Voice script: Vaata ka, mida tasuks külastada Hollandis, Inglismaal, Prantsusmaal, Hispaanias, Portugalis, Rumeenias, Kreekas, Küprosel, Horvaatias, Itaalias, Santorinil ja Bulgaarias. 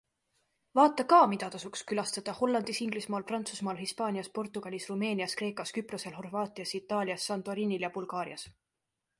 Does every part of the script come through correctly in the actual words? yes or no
yes